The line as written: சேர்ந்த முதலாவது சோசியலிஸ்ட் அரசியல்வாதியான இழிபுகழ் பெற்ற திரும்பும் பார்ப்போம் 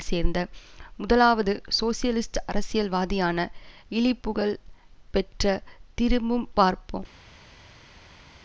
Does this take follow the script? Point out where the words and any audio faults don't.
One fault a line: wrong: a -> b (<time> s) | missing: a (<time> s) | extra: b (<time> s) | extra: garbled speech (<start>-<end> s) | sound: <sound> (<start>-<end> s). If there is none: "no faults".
no faults